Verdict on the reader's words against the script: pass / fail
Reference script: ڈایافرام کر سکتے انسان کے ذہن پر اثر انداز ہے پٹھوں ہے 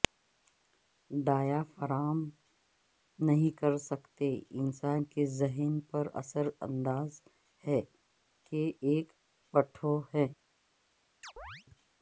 fail